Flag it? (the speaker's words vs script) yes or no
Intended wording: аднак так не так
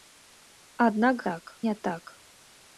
no